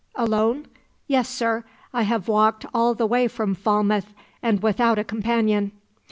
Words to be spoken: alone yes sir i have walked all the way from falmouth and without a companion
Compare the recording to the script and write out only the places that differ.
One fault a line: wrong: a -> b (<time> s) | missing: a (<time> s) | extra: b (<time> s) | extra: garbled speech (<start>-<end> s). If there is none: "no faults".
no faults